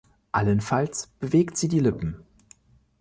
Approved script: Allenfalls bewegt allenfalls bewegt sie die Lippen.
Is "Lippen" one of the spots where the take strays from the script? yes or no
no